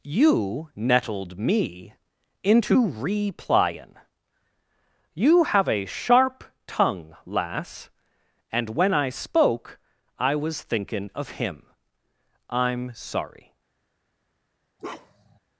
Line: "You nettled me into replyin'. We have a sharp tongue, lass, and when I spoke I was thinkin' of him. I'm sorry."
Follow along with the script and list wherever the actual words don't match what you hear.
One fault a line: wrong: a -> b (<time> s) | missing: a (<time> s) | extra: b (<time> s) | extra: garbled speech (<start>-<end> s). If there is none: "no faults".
wrong: We -> You (5.1 s)